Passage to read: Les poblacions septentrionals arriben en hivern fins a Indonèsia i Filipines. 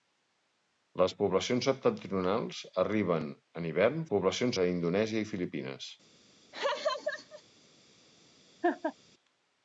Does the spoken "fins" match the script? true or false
false